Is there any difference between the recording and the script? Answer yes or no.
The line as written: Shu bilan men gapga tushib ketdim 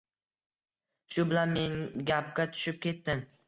no